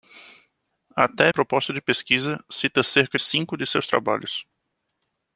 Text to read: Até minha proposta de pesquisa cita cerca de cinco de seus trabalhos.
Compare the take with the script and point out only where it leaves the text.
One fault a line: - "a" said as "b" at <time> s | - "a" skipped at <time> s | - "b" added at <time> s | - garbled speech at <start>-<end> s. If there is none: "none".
- "minha" skipped at 1.3 s
- "de" skipped at 3.2 s